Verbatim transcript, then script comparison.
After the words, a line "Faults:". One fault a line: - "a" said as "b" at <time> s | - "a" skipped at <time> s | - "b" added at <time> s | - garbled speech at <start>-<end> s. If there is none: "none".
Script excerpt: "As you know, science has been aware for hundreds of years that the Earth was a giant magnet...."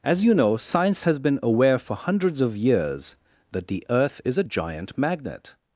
"As you know, science has been aware for hundreds of years that the Earth is a giant magnet...."
Faults:
- "was" said as "is" at 4.2 s